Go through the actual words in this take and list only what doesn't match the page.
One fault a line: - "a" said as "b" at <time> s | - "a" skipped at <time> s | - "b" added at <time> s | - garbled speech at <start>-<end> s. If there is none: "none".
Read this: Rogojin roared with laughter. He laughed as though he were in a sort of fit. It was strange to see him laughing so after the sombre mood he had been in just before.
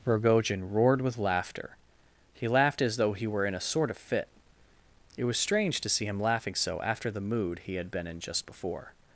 - "sombre" skipped at 7.2 s